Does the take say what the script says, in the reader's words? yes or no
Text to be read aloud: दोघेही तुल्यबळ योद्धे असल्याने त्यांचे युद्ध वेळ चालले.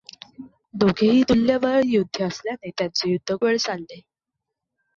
yes